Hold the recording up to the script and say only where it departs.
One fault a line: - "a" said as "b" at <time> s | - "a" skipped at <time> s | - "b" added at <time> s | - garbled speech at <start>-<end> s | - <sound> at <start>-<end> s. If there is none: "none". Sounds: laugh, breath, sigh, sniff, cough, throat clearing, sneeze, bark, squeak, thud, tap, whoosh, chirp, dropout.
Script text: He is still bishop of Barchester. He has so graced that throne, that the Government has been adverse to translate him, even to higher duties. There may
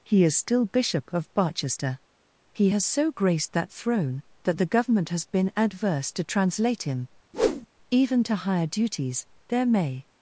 - whoosh at 7.3-7.7 s